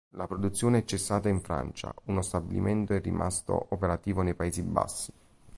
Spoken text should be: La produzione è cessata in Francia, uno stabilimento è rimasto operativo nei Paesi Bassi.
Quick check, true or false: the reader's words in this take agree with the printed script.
true